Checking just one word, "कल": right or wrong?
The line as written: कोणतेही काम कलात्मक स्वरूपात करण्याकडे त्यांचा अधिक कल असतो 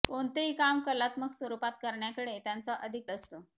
wrong